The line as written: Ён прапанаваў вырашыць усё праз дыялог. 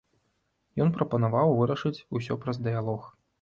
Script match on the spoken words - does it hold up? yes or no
yes